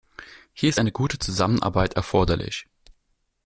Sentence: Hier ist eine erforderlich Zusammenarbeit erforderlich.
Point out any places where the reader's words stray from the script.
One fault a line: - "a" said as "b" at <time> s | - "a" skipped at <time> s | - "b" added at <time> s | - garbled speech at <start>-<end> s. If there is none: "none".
- "erforderlich" said as "gute" at 0.9 s